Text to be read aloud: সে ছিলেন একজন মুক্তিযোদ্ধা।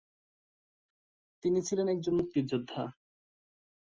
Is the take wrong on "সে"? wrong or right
wrong